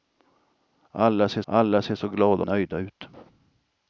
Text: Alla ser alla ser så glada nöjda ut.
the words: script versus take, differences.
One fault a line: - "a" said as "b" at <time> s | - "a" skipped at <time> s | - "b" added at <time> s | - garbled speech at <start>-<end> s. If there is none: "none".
none